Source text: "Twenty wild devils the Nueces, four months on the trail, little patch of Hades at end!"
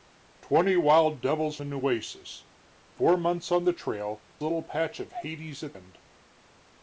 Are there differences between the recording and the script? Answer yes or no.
no